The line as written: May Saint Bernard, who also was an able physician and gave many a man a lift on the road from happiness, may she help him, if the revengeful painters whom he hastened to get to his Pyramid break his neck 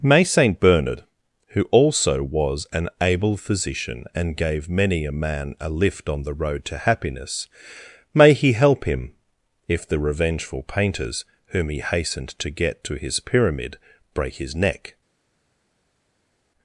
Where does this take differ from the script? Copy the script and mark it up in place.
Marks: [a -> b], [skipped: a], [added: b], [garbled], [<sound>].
May Saint Bernard, who also was an able physician and gave many a man a lift on the road [from -> to] happiness, may [she -> he] help him, if the revengeful painters whom he hastened to get to his Pyramid break his neck